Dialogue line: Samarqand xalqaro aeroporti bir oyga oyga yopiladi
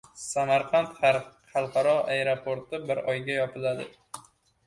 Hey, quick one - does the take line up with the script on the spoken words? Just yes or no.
no